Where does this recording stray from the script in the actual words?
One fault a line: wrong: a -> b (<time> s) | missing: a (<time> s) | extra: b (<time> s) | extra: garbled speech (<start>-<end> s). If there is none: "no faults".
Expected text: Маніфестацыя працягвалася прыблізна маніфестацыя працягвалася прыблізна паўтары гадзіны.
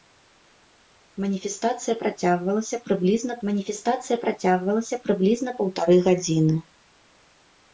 no faults